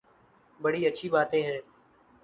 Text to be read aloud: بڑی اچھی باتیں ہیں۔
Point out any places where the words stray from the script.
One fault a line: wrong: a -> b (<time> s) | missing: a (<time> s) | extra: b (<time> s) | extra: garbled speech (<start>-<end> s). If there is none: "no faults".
no faults